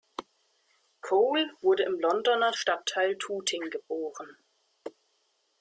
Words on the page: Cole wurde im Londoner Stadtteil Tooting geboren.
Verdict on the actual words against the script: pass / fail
pass